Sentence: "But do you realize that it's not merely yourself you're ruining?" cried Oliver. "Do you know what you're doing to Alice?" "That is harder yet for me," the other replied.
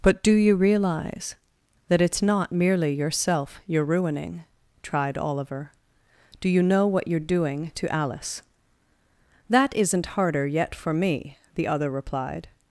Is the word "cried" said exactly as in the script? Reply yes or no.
no